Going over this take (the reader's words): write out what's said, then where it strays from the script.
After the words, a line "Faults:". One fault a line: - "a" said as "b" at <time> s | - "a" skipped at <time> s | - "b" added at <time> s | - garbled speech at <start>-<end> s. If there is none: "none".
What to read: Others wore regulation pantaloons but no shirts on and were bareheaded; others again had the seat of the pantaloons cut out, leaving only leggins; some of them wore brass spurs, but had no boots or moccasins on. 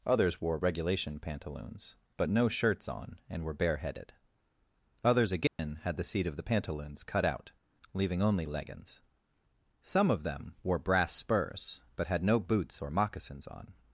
Others wore regulation pantaloons but no shirts on and were bareheaded; others again had the seat of the pantaloons cut out, leaving only leggins; some of them wore brass spurs, but had no boots or moccasins on.
Faults:
none